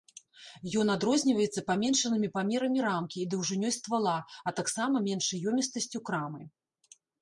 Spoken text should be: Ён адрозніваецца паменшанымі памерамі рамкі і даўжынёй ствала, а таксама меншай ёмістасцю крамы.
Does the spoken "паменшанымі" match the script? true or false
true